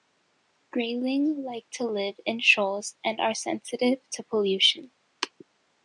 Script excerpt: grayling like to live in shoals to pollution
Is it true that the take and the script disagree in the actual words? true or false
true